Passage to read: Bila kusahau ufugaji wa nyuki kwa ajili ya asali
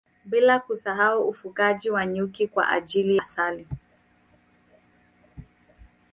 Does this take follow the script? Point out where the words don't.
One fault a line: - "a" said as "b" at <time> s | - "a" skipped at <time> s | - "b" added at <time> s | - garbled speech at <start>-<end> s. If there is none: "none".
- "ya" skipped at 3.2 s